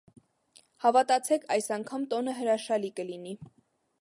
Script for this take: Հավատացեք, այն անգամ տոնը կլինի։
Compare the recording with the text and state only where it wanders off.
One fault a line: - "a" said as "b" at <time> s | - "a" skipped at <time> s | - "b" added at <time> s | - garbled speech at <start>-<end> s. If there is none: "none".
- "այն" said as "այս" at 1.6 s
- "հրաշալի" added at 2.4 s